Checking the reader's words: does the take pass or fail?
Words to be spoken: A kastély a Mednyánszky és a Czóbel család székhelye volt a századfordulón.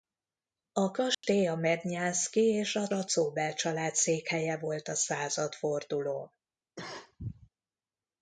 fail